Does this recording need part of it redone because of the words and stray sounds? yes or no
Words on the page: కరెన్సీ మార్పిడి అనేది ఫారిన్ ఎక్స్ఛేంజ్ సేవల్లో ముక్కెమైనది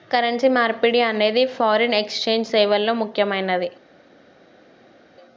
no